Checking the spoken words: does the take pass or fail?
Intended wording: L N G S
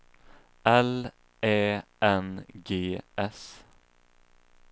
fail